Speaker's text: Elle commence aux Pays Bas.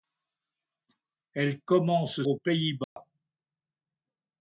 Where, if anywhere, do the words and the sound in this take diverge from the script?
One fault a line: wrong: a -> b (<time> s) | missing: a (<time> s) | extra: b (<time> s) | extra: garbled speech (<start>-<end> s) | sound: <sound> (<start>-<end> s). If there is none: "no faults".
sound: dropout (2.8-3.0 s)